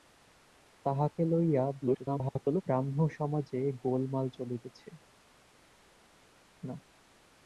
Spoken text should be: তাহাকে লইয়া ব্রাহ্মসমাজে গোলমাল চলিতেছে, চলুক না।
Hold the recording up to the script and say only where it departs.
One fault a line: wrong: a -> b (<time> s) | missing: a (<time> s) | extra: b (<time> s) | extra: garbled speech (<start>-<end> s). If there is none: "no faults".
extra: garbled speech (1.8-2.6 s)
missing: চলুক (4.9 s)